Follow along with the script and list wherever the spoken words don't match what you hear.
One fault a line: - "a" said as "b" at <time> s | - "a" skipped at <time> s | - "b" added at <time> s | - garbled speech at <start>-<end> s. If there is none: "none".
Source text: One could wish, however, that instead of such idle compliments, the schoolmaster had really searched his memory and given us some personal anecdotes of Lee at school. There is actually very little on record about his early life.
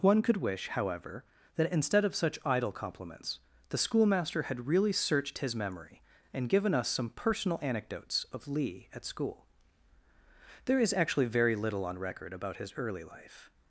none